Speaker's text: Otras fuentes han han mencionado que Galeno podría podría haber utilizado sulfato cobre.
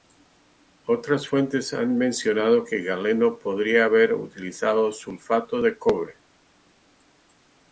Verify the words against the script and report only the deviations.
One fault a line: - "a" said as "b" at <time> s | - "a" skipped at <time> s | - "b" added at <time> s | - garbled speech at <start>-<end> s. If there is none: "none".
- "han" skipped at 1.9 s
- "podría" skipped at 3.9 s
- "de" added at 5.6 s